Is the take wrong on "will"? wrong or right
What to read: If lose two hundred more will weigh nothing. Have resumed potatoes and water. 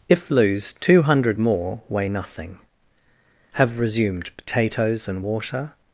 wrong